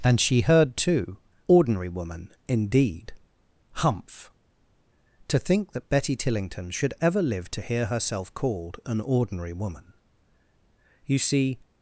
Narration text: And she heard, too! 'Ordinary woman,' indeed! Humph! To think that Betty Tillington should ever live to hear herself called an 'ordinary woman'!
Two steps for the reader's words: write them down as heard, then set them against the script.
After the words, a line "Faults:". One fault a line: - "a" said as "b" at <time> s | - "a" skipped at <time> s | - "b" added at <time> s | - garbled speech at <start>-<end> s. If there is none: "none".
And she heard, too! 'Ordinary woman,' indeed! Humph! To think that Betty Tillington should ever live to hear herself called an 'ordinary woman'! You see
Faults:
- "You see" added at 11.0 s